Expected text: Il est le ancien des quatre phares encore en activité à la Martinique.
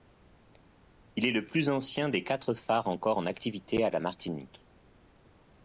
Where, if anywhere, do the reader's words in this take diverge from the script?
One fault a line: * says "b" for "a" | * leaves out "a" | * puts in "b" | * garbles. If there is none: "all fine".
* puts in "plus"